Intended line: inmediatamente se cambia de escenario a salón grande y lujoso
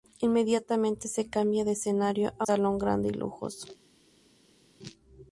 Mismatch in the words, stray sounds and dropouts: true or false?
false